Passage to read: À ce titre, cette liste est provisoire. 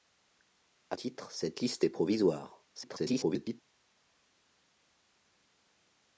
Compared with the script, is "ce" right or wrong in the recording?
wrong